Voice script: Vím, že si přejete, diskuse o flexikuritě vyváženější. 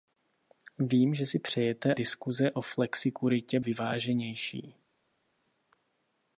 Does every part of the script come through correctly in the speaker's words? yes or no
yes